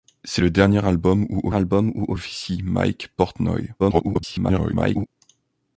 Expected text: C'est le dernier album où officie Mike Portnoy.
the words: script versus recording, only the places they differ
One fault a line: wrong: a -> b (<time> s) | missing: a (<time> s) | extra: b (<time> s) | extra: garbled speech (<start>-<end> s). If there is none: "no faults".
extra: album où (1.5 s)
extra: garbled speech (3.8-5.1 s)